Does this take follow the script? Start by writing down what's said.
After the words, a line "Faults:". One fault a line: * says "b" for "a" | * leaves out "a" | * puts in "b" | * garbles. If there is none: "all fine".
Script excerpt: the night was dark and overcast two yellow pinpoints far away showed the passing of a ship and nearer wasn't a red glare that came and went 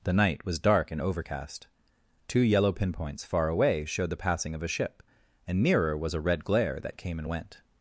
the night was dark and overcast two yellow pinpoints far away showed the passing of a ship and nearer was a red glare that came and went
Faults:
* says "was" for "wasn't"